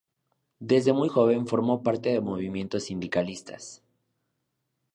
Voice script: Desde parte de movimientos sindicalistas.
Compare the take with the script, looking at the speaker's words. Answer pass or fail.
fail